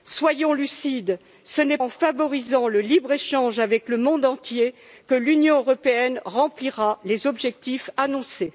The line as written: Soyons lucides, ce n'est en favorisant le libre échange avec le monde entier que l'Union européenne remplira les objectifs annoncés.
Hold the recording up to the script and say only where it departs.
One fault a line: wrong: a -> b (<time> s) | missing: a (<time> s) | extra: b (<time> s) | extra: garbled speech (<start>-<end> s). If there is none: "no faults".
no faults